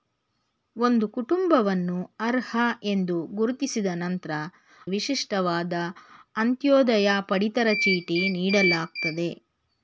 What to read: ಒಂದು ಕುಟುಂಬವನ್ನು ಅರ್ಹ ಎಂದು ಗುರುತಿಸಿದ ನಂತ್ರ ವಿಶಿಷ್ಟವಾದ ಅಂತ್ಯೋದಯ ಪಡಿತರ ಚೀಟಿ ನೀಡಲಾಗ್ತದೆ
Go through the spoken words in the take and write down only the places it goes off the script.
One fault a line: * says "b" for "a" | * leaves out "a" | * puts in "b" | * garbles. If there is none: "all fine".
all fine